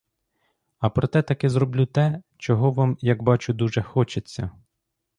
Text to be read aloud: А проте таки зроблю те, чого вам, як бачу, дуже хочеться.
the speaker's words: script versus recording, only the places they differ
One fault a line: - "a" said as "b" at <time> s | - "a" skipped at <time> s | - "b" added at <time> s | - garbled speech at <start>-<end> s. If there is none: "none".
none